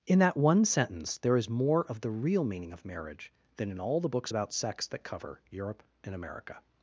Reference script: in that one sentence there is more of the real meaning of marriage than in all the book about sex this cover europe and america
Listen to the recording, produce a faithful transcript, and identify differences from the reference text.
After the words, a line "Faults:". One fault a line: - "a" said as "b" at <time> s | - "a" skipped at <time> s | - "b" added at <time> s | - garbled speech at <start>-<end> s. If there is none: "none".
in that one sentence there is more of the real meaning of marriage than in all the books about sex that cover europe and america
Faults:
- "book" said as "books" at 4.1 s
- "this" said as "that" at 4.9 s